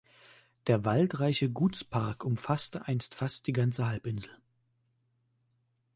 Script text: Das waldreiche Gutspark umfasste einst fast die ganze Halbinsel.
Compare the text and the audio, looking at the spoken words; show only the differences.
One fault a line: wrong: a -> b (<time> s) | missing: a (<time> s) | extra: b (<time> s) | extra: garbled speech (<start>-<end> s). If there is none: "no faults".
wrong: Das -> Der (0.7 s)